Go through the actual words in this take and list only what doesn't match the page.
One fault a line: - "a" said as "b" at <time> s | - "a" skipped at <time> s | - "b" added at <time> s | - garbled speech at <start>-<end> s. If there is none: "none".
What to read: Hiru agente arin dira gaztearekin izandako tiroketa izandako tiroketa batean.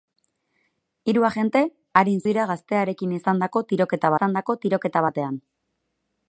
none